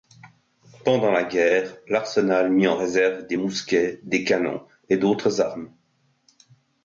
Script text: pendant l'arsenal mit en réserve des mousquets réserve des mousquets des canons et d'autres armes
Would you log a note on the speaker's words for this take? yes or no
yes